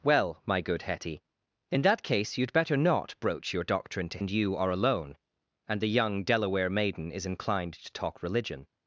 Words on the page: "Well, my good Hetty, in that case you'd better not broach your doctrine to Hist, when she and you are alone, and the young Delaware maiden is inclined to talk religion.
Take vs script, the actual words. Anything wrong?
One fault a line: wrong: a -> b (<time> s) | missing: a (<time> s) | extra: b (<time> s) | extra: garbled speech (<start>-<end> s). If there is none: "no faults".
missing: Hist when she (4.2 s)